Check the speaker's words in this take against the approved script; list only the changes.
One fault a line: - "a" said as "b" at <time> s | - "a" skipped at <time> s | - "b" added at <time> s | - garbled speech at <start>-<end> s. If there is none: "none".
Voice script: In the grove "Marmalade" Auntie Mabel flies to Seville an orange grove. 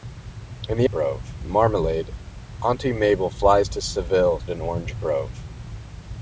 none